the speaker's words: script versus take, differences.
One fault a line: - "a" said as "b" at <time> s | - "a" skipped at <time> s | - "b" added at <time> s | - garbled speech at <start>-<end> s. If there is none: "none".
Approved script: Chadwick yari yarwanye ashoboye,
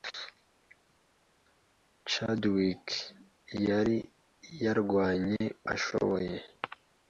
none